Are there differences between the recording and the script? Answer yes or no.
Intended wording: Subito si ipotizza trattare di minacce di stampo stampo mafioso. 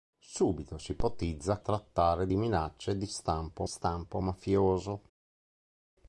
no